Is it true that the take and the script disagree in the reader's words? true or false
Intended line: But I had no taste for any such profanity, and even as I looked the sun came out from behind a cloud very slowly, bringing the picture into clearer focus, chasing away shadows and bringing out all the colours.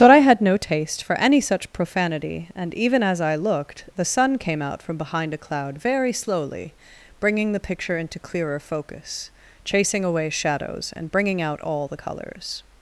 false